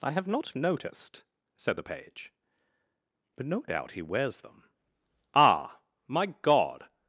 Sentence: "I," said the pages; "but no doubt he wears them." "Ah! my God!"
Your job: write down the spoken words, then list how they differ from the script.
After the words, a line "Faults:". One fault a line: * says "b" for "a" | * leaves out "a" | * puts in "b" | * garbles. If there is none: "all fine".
"I have not noticed," said the page; "but no doubt he wears them." "Ah! my God!"
Faults:
* puts in "have not noticed"
* says "page" for "pages"